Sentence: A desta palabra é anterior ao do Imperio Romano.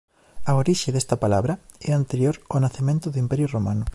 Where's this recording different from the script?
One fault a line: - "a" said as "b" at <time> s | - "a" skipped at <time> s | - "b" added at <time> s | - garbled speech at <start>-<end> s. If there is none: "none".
- "orixe" added at 0.6 s
- "nacemento" added at 2.6 s